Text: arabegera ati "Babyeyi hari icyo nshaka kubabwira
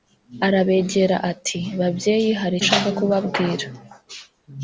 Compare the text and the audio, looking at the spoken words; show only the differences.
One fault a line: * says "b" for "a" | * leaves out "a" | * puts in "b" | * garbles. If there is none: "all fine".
* leaves out "icyo"